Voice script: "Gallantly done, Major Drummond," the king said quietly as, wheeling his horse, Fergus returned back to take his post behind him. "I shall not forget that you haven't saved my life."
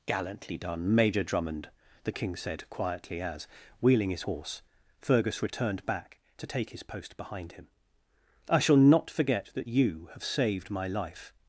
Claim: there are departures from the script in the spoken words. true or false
true